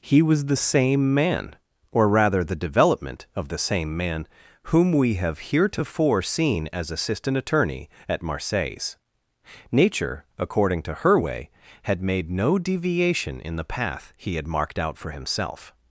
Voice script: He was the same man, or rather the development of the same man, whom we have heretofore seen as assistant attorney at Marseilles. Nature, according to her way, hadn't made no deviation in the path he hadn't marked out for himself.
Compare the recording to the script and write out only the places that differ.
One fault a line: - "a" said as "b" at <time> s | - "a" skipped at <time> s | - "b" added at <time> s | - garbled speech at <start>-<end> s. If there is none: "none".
- "hadn't" said as "had" at 11.8 s
- "hadn't" said as "had" at 14.3 s